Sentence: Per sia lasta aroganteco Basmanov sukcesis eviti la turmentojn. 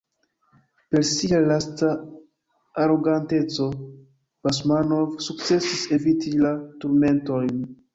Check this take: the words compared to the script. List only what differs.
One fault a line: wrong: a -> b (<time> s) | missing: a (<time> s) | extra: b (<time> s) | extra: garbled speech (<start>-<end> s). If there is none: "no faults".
no faults